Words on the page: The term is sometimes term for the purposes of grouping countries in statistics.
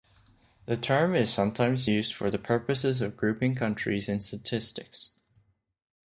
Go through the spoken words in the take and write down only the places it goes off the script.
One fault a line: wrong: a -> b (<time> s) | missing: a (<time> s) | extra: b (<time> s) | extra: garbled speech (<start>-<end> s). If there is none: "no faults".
wrong: term -> used (1.9 s)